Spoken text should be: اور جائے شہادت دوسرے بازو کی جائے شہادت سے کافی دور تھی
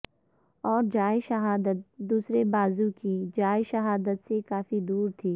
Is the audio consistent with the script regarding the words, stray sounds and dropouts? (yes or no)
yes